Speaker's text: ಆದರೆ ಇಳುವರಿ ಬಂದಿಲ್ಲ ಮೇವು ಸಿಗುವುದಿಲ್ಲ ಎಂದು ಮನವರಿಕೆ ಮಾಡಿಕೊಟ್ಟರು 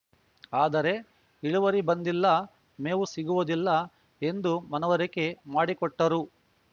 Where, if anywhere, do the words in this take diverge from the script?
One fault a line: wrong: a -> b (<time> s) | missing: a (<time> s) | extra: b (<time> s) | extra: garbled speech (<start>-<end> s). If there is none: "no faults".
no faults